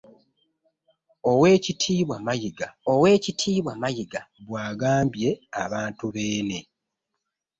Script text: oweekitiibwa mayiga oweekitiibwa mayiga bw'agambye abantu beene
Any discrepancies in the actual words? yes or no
no